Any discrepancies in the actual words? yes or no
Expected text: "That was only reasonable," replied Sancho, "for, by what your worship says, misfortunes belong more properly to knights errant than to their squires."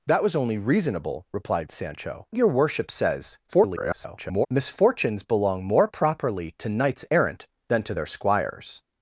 yes